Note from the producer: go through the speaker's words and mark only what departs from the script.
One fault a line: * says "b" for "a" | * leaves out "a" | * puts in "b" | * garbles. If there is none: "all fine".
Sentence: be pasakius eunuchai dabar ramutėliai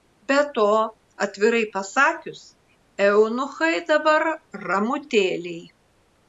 * puts in "to atvirai"